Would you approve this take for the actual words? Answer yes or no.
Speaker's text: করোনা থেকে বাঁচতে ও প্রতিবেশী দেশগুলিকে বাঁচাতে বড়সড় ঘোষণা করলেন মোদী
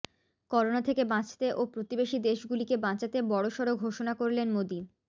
yes